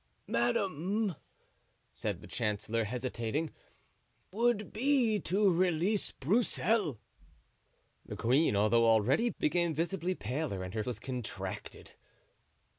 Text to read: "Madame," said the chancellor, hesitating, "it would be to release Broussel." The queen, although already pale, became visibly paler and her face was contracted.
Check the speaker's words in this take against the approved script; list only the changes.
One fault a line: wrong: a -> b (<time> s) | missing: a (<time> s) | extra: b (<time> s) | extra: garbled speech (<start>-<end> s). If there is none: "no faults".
missing: it (3.5 s)
missing: pale (9.3 s)
missing: face (10.8 s)